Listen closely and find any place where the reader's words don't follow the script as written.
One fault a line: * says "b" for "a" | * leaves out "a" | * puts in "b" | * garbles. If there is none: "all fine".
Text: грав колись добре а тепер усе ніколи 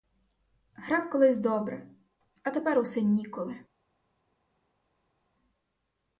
all fine